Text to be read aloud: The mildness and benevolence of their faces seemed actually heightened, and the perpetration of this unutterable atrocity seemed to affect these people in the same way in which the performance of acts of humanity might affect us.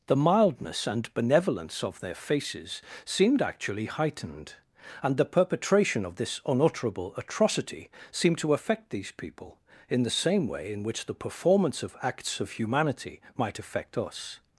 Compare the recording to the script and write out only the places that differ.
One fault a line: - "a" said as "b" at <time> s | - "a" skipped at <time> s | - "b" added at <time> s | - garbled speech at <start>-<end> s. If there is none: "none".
none